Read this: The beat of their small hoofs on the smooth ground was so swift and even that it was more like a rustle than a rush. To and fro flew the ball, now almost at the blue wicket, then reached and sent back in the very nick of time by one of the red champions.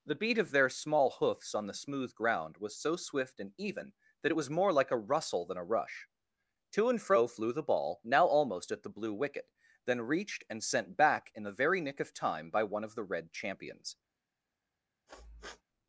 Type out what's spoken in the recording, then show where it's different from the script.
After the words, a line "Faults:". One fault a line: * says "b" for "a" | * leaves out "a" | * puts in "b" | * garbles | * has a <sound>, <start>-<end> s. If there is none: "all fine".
The beat of their small hoofs on the smooth ground was so swift and even that it was more like a rustle than a rush. To and fro flew the ball, now almost at the blue wicket, then reached and sent back in the very nick of time by one of the red champions.
Faults:
* has a sniff, 15.1-15.6 s